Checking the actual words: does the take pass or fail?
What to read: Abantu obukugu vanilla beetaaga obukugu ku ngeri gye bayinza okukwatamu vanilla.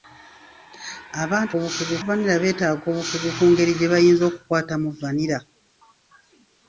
pass